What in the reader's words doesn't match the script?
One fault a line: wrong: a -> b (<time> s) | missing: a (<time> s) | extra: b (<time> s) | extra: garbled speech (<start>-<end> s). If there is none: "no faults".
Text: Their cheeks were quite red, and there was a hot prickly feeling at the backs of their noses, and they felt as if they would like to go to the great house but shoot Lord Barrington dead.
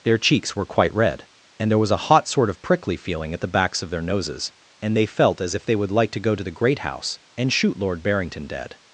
extra: sort of (2.3 s)
wrong: but -> and (7.4 s)